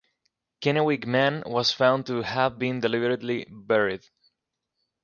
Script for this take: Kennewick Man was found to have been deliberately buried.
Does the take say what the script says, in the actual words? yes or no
yes